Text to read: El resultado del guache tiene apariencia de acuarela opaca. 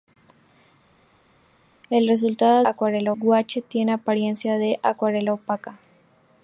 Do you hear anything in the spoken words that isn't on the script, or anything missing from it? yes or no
yes